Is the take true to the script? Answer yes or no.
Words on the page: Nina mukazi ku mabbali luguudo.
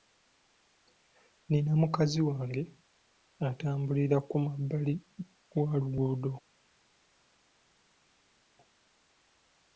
no